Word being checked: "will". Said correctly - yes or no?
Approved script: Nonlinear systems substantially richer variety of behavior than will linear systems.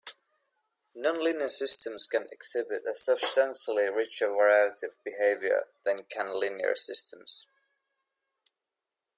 no